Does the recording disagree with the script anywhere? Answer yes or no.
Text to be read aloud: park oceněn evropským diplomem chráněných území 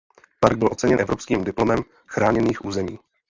yes